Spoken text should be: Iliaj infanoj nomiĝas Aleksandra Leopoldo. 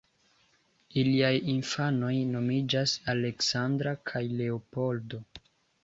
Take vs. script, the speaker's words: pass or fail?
fail